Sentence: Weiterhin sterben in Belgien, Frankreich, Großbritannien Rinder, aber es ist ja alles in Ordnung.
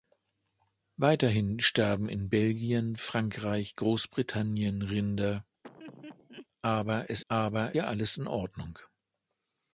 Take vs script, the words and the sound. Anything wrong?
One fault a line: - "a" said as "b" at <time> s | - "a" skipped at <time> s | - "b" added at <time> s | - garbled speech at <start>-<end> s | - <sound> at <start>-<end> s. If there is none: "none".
- laugh at 5.6-6.5 s
- "ist" said as "aber" at 7.3 s